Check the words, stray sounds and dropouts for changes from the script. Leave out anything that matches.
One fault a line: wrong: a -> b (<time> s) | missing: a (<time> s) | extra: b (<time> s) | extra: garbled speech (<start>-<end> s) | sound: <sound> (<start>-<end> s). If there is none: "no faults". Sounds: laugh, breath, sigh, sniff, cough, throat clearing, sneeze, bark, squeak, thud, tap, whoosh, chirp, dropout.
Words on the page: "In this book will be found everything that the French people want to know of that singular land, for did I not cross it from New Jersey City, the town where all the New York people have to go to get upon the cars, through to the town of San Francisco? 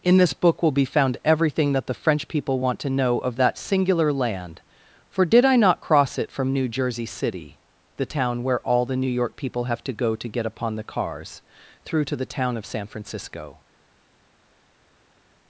no faults